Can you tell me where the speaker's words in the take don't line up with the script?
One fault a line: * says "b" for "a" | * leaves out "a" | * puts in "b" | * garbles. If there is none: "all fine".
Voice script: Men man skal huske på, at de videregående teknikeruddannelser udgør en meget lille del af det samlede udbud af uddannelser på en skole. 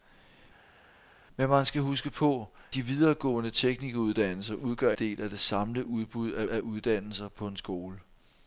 * leaves out "at"
* leaves out "en meget lille"
* puts in "af"